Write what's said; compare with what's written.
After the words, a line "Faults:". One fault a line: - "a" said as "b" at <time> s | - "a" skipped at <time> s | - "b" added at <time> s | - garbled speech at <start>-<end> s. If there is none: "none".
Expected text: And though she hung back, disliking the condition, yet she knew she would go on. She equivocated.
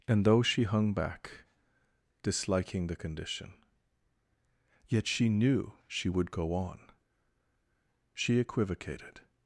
And though she hung back, disliking the condition, yet she knew she would go on. She equivocated.
Faults:
none